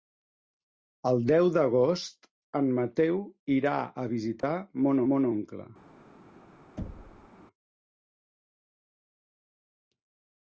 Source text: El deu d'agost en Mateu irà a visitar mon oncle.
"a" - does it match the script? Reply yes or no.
yes